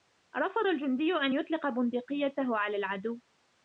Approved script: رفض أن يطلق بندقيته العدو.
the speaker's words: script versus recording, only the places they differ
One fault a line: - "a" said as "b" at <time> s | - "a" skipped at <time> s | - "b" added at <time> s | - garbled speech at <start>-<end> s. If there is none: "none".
- "الجندي" added at 0.6 s
- "على" added at 2.6 s